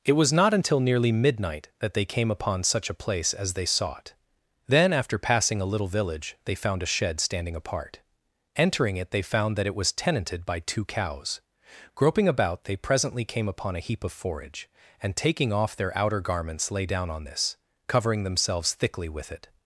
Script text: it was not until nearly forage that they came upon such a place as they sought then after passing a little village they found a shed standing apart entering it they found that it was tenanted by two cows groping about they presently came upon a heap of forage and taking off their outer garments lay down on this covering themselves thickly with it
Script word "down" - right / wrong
right